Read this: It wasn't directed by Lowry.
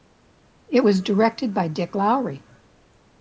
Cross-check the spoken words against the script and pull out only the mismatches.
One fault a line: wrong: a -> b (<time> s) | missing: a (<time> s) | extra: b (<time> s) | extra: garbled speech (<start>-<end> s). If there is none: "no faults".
wrong: wasn't -> was (0.8 s)
extra: Dick (1.7 s)